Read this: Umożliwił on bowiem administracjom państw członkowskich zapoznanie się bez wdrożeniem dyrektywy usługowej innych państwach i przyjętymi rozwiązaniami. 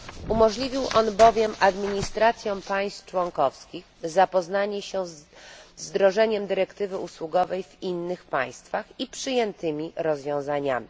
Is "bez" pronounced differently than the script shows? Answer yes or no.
yes